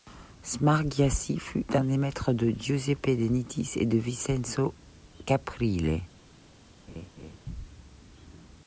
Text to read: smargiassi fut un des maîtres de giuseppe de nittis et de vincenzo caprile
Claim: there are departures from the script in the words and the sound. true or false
true